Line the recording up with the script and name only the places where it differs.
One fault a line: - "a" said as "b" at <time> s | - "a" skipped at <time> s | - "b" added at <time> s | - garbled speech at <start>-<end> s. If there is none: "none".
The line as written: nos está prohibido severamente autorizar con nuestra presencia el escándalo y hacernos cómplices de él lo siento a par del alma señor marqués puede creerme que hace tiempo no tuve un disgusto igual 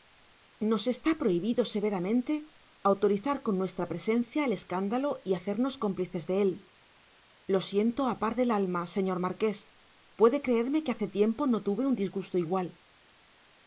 none